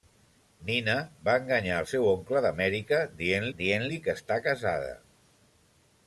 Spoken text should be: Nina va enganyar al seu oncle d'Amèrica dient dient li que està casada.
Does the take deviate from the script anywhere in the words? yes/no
no